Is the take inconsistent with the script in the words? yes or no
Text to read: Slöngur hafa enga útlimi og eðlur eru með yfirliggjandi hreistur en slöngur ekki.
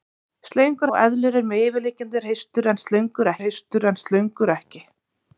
yes